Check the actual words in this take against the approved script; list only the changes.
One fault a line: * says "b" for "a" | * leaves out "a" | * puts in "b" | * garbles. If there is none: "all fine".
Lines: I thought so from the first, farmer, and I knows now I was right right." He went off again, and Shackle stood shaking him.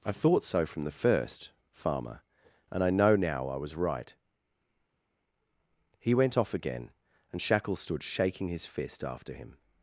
* says "know" for "knows"
* leaves out "right"
* puts in "his fist after"